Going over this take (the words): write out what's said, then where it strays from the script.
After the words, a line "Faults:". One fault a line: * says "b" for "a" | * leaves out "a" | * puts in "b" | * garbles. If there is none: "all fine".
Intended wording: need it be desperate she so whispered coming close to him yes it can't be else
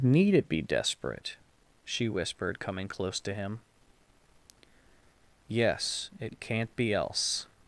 need it be desperate she whispered coming close to him yes it can't be else
Faults:
* leaves out "so"